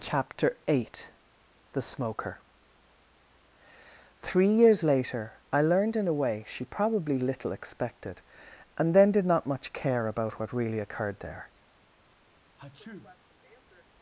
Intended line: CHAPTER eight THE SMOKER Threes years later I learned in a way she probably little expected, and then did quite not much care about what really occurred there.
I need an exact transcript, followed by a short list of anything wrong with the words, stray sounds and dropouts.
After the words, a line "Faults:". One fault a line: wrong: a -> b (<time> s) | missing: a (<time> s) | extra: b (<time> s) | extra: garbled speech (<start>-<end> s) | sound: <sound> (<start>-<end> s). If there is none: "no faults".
CHAPTER eight THE SMOKER Three years later I learned in a way she probably little expected, and then did not much care about what really occurred there.
Faults:
wrong: Threes -> Three (4.2 s)
missing: quite (9.3 s)
sound: sneeze (12.6-13.9 s)